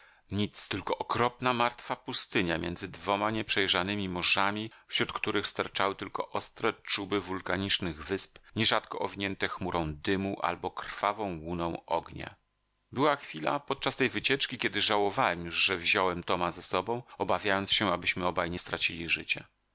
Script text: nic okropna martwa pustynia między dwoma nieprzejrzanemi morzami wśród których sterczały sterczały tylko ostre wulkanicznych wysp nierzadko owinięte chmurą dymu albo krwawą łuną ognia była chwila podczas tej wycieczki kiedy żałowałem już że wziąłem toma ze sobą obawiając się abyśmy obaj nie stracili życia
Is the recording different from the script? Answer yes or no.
yes